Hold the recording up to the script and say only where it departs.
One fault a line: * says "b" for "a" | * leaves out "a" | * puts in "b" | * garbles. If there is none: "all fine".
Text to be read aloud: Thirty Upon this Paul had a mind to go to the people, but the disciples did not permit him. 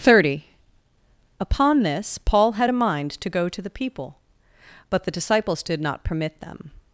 * says "them" for "him"